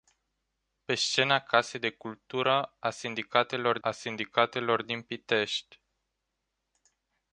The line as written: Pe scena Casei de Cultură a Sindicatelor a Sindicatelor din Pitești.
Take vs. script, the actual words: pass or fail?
pass